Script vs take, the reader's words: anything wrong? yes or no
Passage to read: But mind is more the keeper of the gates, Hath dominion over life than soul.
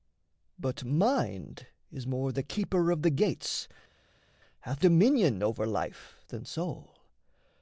no